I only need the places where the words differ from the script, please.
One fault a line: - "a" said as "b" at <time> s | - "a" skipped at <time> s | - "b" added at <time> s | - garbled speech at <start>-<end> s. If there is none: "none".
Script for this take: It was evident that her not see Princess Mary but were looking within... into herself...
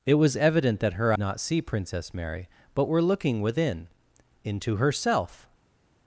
none